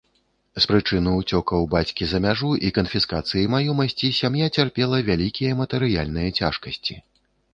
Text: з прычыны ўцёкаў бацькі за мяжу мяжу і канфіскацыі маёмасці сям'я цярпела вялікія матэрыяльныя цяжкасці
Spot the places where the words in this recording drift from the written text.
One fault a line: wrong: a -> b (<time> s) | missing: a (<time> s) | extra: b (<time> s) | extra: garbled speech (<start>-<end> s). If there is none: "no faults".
missing: мяжу (2.5 s)